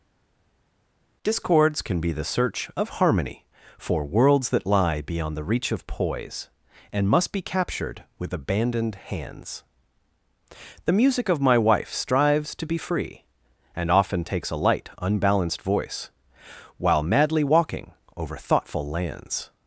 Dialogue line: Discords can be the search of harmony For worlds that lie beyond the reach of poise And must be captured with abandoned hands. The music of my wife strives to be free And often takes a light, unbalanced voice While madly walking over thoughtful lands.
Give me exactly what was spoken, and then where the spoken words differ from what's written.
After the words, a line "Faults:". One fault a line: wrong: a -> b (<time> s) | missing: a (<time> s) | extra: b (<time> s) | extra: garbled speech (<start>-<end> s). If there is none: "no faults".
Discords can be the search of harmony For worlds that lie beyond the reach of poise And must be captured with abandoned hands. The music of my wife strives to be free And often takes a light, unbalanced voice While madly walking over thoughtful lands.
Faults:
no faults